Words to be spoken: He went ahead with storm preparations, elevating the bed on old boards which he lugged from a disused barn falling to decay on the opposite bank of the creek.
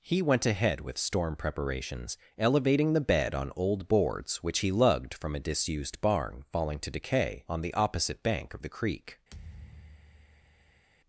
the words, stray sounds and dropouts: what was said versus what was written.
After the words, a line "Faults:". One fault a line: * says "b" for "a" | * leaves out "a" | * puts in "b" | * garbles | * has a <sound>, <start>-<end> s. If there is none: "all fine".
He went ahead with storm preparations, elevating the bed on old boards which he lugged from a disused barn falling to decay on the opposite bank of the creek.
Faults:
* has a thud, 9.3-10.9 s